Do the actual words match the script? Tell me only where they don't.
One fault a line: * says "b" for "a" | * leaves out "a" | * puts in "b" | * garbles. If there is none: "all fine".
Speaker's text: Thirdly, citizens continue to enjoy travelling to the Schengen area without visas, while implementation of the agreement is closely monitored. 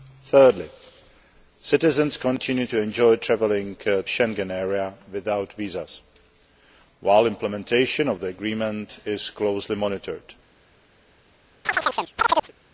* leaves out "the"